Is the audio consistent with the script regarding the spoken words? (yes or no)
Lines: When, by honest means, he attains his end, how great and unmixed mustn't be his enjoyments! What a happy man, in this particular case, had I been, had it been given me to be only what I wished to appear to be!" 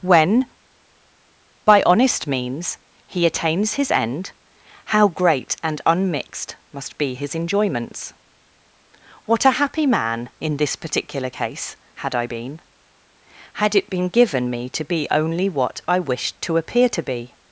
no